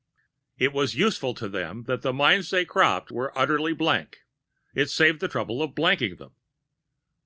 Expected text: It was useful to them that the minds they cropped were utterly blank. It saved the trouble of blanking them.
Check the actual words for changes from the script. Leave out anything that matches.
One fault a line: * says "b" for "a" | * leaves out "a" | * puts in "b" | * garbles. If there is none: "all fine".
all fine